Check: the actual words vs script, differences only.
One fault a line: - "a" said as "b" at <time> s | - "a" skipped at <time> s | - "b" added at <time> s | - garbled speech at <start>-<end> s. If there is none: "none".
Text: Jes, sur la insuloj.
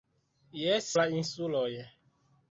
- "sur" skipped at 0.9 s